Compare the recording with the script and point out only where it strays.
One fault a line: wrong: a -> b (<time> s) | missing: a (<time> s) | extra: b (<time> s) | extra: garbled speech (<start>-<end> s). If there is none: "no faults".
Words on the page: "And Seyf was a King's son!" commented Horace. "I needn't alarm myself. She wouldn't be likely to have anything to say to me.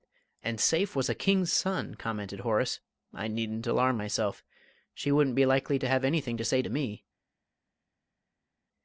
no faults